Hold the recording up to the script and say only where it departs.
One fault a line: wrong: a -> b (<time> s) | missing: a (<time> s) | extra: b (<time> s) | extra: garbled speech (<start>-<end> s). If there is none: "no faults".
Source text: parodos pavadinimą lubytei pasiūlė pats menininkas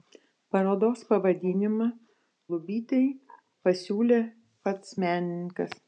no faults